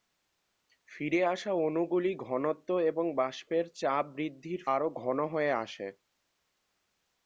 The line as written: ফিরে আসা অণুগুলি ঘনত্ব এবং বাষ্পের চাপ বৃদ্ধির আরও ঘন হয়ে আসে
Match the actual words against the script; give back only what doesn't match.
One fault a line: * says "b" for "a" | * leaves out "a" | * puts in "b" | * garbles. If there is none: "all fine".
all fine